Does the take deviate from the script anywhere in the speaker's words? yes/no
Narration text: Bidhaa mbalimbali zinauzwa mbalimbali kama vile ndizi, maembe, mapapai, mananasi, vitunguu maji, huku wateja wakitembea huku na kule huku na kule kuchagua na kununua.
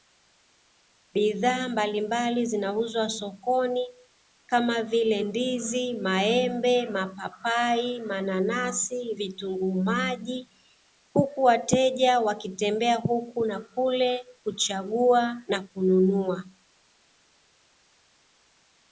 yes